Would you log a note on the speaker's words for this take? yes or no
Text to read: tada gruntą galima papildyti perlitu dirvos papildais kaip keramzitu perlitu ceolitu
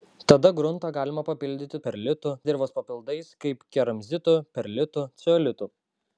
no